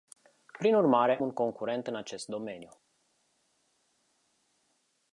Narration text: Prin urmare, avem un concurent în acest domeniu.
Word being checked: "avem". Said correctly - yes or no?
no